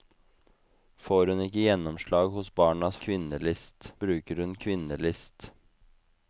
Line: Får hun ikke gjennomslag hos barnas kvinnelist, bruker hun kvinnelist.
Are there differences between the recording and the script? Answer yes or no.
no